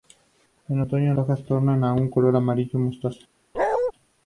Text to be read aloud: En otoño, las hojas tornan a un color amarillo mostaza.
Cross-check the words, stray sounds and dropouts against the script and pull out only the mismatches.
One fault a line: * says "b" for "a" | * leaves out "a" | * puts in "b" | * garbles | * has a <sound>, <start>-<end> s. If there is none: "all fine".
* leaves out "las"
* has a bark, 3.5-3.9 s